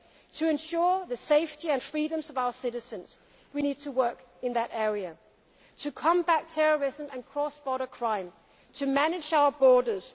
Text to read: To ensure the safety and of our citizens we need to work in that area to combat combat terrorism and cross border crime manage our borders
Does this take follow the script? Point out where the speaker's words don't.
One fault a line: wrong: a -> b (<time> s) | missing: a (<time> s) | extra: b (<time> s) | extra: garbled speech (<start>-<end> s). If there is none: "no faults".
extra: freedoms (1.8 s)
missing: combat (6.5 s)
extra: to (8.7 s)